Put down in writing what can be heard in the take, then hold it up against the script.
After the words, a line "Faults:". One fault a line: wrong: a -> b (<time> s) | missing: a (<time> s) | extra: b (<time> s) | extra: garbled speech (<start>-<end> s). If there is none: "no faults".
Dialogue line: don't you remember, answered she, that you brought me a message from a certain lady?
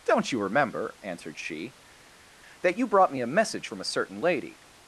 don't you remember, answered she, that you brought me a message from a certain lady?
Faults:
no faults